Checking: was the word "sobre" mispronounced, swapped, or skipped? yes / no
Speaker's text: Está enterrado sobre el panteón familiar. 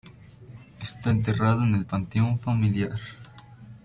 yes